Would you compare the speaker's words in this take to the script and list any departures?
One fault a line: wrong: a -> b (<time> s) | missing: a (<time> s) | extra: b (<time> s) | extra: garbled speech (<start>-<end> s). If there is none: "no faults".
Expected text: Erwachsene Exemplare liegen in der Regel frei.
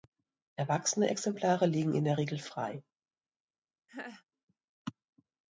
no faults